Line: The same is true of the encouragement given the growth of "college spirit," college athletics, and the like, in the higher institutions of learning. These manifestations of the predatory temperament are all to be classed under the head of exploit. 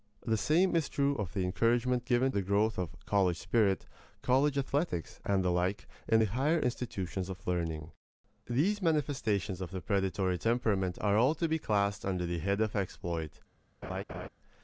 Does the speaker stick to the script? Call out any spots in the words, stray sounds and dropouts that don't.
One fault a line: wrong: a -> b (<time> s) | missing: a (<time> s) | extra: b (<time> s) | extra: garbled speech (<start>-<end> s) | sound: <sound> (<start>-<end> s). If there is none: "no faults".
sound: laugh (13.8-14.3 s)